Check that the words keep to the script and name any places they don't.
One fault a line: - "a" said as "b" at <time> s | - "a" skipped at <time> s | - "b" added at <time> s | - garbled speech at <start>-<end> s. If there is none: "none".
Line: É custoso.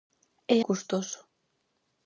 none